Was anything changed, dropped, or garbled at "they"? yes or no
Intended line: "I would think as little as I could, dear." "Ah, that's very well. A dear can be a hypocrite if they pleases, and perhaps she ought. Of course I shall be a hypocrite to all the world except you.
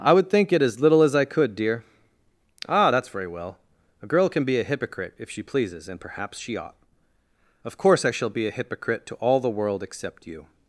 yes